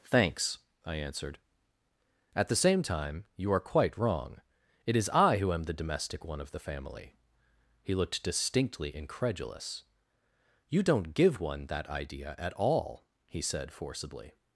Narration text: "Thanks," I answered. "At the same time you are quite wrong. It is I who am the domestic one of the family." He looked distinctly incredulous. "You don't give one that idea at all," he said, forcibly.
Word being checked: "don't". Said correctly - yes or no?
yes